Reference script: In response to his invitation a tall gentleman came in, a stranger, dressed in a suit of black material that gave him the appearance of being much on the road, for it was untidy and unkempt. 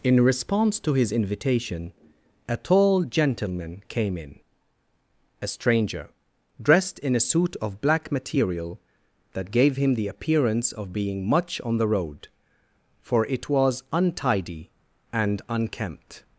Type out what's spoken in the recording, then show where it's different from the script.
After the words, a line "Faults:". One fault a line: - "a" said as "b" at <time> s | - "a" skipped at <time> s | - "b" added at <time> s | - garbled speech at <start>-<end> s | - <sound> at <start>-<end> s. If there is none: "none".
In response to his invitation a tall gentleman came in, a stranger, dressed in a suit of black material that gave him the appearance of being much on the road, for it was untidy and unkempt.
Faults:
none